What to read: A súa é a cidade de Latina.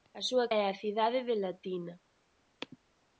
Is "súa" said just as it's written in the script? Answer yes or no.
yes